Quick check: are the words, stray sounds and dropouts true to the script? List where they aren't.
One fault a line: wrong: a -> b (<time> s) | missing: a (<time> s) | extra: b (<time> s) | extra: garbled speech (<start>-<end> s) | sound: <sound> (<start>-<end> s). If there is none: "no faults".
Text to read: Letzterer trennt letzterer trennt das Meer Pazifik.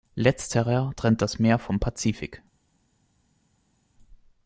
missing: letzterer trennt (1.2 s)
extra: vom (1.6 s)